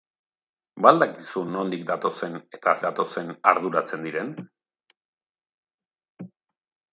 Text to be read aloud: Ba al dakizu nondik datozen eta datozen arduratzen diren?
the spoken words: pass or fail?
pass